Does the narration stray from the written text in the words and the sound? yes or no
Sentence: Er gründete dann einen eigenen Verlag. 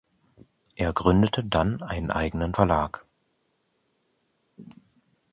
no